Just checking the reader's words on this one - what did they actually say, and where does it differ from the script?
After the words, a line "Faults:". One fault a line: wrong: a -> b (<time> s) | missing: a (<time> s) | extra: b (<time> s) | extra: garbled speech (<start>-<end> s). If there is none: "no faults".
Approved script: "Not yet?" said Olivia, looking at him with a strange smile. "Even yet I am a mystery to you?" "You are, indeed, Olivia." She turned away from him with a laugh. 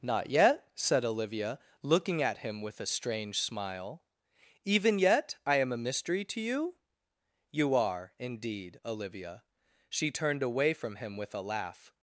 "Not yet?" said Olivia, looking at him with a strange smile. "Even yet I am a mystery to you?" "You are, indeed, Olivia." She turned away from him with a laugh.
Faults:
no faults